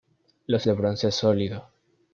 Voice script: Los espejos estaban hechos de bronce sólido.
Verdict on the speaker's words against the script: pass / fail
fail